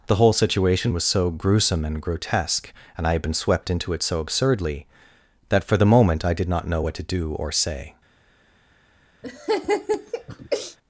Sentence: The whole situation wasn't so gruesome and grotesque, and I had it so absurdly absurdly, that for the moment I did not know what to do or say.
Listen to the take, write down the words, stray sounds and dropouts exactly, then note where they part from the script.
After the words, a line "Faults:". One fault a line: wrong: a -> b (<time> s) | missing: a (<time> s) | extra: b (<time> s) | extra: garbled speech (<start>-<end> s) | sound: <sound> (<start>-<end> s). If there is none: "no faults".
The whole situation was so gruesome and grotesque, and I had been swept into it so absurdly, that for the moment I did not know what to do or say.
Faults:
wrong: wasn't -> was (0.9 s)
extra: been swept into (3.2 s)
missing: absurdly (4.8 s)
sound: laugh (9.2-10.8 s)